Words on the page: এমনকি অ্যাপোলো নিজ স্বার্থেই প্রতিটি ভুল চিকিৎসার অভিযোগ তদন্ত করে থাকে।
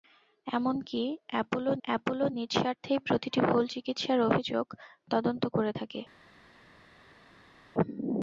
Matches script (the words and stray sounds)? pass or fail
fail